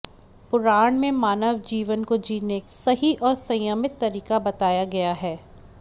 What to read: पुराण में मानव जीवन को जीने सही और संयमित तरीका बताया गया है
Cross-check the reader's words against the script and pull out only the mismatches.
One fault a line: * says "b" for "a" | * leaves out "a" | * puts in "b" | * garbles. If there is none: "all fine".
all fine